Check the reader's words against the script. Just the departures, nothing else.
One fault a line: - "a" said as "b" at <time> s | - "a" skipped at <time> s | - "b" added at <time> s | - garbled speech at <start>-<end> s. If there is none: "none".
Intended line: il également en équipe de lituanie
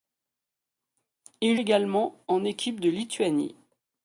none